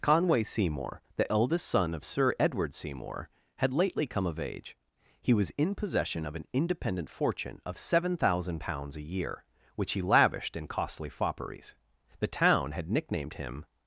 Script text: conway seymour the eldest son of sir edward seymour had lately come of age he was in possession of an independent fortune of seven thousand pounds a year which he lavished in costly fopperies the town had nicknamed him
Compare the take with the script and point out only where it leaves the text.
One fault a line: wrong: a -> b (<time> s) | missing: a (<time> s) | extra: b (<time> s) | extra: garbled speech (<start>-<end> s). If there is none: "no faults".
no faults